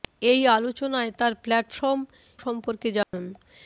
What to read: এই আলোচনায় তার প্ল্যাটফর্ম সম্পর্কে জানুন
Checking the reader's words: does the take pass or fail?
pass